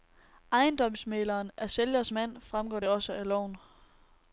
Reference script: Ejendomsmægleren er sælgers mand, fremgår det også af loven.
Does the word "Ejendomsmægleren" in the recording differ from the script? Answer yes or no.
no